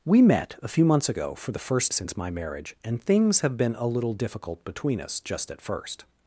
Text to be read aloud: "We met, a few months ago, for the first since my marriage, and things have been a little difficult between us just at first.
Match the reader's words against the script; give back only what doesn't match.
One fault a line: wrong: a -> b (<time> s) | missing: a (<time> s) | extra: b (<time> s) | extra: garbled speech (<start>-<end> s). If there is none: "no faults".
no faults